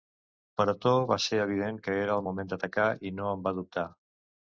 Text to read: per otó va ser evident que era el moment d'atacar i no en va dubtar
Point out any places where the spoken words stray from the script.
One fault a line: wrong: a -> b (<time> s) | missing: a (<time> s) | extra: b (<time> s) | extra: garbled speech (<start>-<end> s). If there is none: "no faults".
no faults